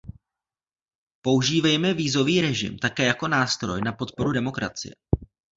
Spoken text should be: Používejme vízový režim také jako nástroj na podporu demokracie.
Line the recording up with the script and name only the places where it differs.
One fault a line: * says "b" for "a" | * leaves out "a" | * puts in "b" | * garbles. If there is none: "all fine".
all fine